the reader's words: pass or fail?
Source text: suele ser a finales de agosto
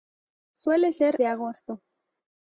fail